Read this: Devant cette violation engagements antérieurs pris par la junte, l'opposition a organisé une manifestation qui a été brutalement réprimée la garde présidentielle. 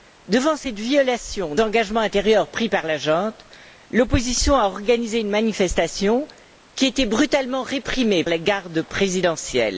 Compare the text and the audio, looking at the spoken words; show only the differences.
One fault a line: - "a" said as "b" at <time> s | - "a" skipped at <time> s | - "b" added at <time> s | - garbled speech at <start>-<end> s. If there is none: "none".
none